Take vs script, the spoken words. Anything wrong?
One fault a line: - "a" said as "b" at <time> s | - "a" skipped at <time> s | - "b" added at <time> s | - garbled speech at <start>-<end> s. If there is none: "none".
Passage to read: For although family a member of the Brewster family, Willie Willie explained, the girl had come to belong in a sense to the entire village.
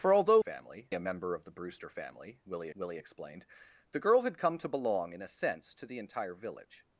none